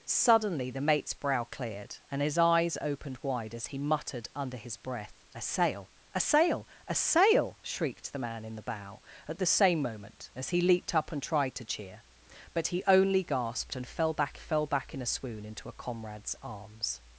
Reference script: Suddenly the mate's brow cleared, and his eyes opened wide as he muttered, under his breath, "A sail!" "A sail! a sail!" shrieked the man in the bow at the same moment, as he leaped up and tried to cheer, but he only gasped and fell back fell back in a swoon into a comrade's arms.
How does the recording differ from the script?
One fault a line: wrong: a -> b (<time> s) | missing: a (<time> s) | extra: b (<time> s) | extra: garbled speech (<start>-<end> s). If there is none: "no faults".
no faults